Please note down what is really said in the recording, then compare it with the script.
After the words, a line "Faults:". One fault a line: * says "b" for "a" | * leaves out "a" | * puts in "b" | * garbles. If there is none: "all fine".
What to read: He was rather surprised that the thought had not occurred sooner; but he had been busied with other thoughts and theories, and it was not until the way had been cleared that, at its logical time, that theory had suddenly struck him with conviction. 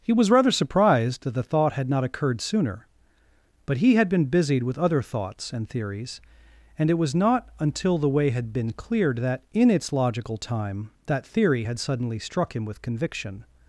He was rather surprised that the thought had not occurred sooner; but he had been busied with other thoughts and theories, and it was not until the way had been cleared that, in its logical time, that theory had suddenly struck him with conviction.
Faults:
* says "in" for "at"